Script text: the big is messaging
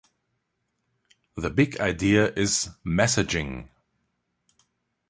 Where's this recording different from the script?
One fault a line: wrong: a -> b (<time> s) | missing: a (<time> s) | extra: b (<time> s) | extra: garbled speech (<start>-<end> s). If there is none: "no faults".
extra: idea (1.8 s)